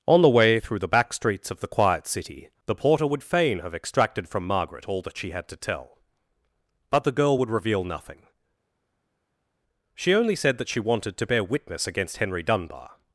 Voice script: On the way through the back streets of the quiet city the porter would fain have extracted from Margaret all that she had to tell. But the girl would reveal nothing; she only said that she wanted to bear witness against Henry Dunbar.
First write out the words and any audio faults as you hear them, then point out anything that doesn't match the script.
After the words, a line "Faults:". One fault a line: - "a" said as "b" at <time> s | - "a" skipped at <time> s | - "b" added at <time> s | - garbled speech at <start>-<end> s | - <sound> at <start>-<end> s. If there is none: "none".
On the way through the back streets of the quiet city the porter would fain have extracted from Margaret all that she had to tell. But the girl would reveal nothing; she only said that she wanted to bear witness against Henry Dunbar.
Faults:
none